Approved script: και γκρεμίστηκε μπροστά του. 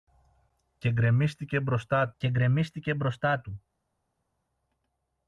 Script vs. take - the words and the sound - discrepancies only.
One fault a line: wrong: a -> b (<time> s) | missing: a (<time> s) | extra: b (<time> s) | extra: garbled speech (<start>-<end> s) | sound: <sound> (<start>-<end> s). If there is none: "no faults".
extra: και γκρεμίστηκε μπροστά (2.2 s)